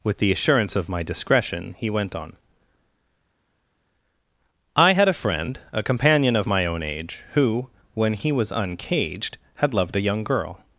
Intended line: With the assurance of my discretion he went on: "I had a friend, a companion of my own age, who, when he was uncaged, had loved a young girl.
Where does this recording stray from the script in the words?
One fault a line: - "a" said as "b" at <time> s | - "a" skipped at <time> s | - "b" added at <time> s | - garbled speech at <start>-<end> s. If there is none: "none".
none